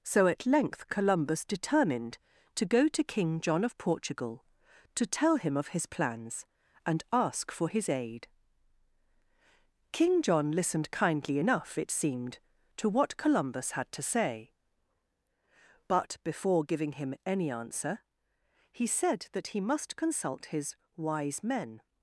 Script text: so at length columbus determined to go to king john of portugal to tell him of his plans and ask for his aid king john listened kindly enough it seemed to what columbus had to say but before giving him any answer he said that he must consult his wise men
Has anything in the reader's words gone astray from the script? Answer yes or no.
no